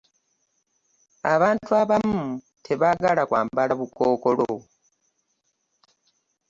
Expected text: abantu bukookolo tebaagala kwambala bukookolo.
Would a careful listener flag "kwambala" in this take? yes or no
no